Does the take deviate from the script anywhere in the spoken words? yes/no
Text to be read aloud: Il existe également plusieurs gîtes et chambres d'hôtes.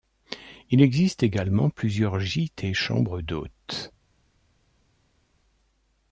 no